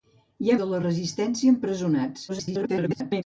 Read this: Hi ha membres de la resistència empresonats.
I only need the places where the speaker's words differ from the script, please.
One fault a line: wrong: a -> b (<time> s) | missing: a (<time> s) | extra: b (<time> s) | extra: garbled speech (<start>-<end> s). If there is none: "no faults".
missing: membres (0.6 s)
extra: garbled speech (2.3-3.2 s)